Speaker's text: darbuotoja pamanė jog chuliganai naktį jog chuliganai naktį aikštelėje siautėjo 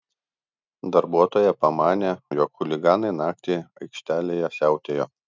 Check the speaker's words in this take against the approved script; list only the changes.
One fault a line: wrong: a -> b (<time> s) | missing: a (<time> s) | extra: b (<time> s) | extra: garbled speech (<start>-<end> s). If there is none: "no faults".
missing: jog chuliganai naktį (3.6 s)